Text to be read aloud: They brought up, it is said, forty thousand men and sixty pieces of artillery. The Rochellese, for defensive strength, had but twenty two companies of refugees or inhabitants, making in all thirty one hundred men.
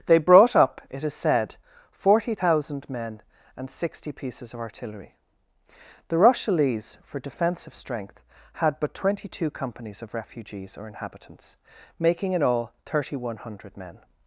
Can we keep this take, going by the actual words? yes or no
yes